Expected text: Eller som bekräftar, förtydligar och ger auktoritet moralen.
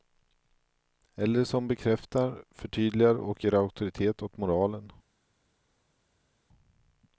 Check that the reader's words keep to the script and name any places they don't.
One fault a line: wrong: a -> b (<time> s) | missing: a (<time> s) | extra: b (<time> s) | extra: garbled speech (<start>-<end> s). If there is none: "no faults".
extra: åt (4.2 s)